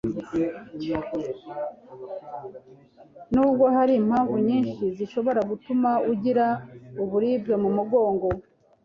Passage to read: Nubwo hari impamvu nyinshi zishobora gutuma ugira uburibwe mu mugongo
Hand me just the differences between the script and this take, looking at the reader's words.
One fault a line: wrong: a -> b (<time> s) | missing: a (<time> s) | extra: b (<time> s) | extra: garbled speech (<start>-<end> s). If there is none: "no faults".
no faults